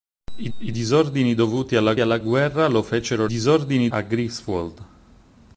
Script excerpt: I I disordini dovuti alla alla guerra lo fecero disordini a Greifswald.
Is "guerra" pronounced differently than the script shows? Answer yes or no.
no